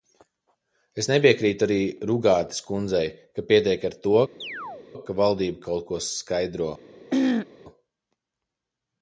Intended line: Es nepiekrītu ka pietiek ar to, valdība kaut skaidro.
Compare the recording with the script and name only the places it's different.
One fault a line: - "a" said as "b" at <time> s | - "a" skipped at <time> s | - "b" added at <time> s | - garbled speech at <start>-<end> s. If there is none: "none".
- "arī Rugātes kundzei" added at 1.7 s
- "ka" added at 5.1 s
- "ko" added at 5.9 s